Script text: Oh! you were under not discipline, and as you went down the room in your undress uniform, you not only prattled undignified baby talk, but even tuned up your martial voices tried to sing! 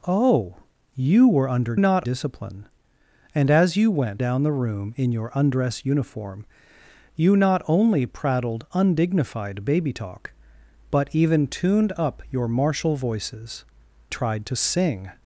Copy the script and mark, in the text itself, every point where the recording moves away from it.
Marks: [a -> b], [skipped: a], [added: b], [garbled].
Oh! you were under not discipline, and as you went down the room in your undress uniform, you not only prattled undignified baby talk, but even tuned up your martial voices tried to sing!